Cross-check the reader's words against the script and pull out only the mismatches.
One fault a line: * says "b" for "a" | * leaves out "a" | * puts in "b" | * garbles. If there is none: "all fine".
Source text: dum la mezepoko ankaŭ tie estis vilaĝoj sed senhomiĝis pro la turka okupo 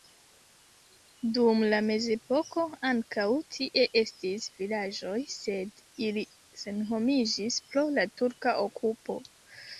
* puts in "ili"